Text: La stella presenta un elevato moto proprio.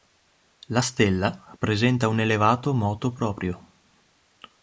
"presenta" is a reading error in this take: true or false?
false